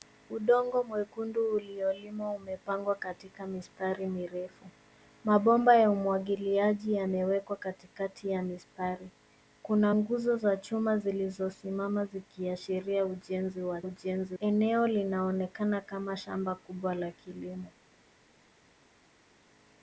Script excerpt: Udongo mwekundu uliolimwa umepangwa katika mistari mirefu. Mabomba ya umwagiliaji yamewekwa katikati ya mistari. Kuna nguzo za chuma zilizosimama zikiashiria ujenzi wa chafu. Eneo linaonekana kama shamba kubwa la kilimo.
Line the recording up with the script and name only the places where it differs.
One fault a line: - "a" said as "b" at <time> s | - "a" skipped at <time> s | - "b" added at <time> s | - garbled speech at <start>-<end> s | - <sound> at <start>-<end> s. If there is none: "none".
- "chafu" said as "ujenzi" at 13.8 s